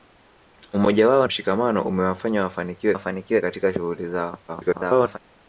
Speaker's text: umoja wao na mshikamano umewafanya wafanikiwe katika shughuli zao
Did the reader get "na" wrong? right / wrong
wrong